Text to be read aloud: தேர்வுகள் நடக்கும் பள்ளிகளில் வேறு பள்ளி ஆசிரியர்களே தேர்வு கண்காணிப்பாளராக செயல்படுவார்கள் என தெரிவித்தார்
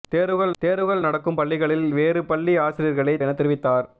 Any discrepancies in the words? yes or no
yes